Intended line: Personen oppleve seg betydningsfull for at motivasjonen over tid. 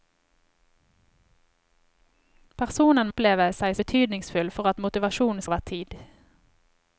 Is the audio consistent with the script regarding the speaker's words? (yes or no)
yes